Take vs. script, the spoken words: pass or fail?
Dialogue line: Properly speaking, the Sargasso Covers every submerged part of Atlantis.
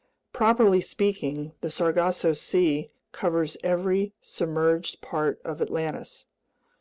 fail